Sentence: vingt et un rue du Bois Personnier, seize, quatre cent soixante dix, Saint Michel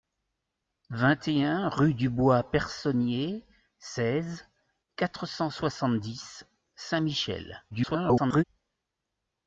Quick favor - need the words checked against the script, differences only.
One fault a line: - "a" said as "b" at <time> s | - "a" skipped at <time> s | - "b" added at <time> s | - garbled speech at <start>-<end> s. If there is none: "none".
- garbled speech at 7.7-8.4 s